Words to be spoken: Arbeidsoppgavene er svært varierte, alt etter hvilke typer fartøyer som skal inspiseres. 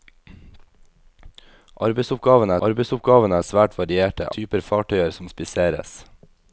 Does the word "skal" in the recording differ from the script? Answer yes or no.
yes